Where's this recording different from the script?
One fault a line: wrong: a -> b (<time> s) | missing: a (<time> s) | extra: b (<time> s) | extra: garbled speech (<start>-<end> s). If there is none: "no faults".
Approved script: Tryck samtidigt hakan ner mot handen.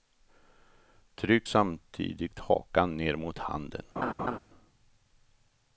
no faults